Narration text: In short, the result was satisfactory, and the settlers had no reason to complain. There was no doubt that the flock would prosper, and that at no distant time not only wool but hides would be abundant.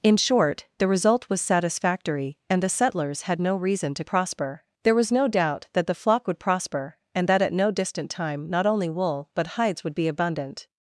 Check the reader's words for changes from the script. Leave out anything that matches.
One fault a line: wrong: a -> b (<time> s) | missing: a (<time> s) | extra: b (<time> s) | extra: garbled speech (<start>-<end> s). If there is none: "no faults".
wrong: complain -> prosper (4.0 s)